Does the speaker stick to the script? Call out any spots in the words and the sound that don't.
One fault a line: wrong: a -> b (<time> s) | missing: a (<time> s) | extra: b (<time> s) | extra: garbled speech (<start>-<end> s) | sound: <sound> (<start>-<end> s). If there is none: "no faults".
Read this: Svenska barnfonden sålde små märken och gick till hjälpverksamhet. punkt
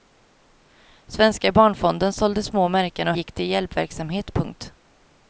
no faults